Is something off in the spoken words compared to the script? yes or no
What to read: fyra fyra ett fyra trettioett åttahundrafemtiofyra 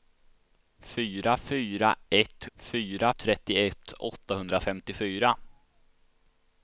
no